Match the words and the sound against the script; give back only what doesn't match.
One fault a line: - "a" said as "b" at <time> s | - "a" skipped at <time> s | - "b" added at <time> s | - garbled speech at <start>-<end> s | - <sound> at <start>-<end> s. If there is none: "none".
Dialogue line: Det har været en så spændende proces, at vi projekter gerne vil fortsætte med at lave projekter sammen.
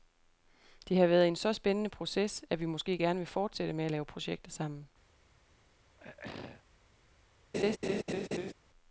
- "projekter" said as "måske" at 2.6 s
- throat clearing at 6.0-6.6 s
- laugh at 7.5-8.5 s